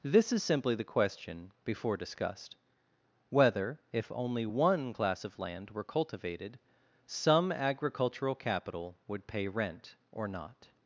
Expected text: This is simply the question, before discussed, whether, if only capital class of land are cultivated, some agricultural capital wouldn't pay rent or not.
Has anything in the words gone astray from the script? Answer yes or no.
yes